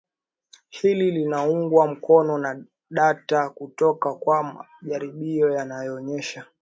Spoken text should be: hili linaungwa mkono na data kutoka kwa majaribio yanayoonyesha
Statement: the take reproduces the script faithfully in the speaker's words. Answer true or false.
true